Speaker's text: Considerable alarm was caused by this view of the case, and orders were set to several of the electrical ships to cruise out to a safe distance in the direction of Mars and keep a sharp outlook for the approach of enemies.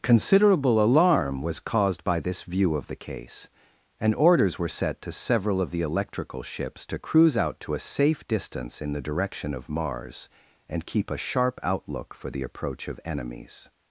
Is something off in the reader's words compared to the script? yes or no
no